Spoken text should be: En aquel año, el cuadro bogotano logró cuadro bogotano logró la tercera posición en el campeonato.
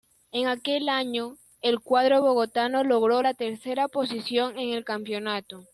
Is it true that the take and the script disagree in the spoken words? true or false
true